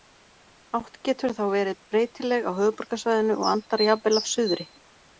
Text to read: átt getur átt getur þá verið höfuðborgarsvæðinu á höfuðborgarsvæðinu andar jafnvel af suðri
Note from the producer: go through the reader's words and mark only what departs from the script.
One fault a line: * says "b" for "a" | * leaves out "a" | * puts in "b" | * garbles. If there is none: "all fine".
* leaves out "átt getur"
* says "breytileg" for "höfuðborgarsvæðinu"
* puts in "og"